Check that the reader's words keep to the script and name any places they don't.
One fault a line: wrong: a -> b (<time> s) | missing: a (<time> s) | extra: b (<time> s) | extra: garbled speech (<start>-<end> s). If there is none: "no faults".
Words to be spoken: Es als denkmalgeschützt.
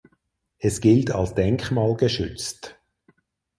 extra: gilt (0.8 s)